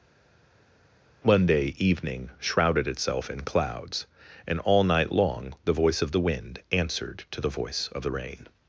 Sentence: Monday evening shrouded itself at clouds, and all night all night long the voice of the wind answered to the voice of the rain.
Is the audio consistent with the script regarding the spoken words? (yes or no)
no